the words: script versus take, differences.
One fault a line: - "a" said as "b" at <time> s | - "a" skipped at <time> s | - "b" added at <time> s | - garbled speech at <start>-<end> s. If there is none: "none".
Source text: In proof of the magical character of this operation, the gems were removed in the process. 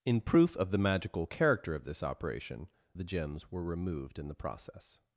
none